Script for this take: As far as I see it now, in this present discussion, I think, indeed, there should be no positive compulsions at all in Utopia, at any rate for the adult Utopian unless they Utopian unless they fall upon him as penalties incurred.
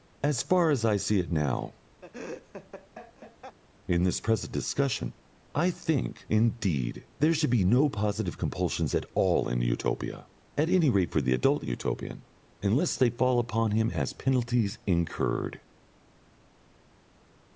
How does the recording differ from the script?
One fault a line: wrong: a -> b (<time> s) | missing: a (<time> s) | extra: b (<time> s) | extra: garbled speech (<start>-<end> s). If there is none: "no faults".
missing: Utopian unless they (13.1 s)